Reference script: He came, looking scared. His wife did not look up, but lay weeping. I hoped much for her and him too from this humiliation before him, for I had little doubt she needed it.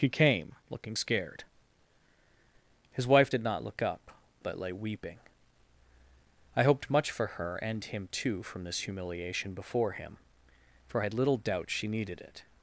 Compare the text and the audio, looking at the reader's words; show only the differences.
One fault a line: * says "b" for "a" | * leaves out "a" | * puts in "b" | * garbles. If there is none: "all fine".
all fine